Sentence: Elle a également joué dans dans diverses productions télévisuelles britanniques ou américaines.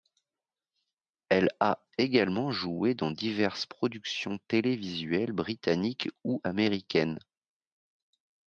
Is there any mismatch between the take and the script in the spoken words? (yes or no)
yes